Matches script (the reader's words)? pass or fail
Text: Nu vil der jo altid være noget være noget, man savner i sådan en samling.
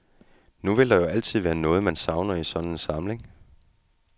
fail